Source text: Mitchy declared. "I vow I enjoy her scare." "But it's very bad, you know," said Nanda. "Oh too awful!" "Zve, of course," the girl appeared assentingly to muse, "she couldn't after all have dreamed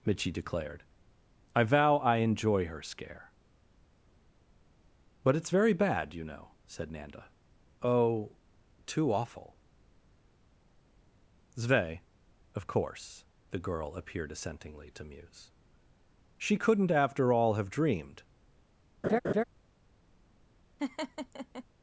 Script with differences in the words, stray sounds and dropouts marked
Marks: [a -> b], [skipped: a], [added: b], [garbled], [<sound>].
Mitchy declared. "I vow I enjoy her scare." "But it's very bad, you know," said Nanda. "Oh too awful!" "Zve, of course," the girl appeared assentingly to muse, "she couldn't after all have dreamed [laugh] [laugh]